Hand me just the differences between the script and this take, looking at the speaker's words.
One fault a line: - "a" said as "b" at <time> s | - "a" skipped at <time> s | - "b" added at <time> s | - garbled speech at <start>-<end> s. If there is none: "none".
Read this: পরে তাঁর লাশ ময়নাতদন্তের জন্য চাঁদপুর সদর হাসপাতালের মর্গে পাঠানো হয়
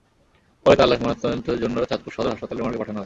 none